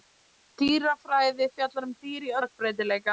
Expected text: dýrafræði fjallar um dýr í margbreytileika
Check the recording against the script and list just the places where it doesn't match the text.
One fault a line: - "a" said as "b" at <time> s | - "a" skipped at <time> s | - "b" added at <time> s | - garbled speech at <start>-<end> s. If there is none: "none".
none